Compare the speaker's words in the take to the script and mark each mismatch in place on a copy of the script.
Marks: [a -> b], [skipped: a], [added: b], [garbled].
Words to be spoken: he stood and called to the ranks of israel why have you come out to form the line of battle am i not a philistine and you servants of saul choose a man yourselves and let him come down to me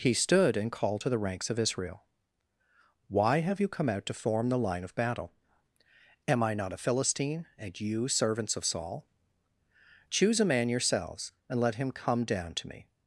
he stood and called to the ranks of israel why have you come out to form the line of battle am i not a philistine and you servants of saul choose a man yourselves and let him come down to me